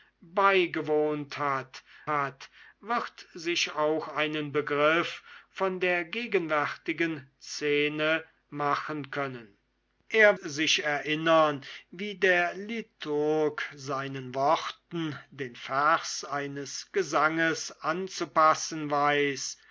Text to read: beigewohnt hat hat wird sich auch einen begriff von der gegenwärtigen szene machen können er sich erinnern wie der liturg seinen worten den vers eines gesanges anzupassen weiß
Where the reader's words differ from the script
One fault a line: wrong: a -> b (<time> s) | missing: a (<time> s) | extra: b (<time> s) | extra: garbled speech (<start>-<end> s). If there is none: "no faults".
no faults